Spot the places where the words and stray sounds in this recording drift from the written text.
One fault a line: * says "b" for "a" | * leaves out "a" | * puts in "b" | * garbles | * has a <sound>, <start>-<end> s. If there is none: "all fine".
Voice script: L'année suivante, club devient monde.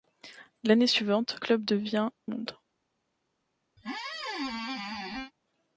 * has a squeak, 3.8-5.3 s